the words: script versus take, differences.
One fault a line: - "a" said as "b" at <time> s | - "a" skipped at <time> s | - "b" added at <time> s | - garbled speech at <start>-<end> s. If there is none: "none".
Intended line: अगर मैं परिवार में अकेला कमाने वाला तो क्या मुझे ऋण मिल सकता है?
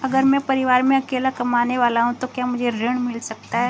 - "हूँ" added at 2.0 s